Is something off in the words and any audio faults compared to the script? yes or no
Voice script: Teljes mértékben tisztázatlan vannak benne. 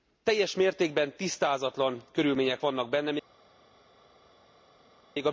yes